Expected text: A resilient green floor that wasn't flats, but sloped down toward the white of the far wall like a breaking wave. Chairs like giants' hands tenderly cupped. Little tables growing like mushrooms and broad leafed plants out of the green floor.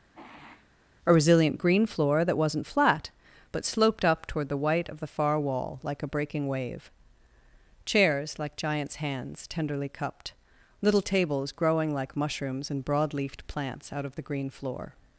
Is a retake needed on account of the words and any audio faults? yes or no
yes